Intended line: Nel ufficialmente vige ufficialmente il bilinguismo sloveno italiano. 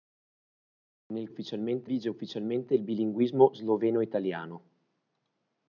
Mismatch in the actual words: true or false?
false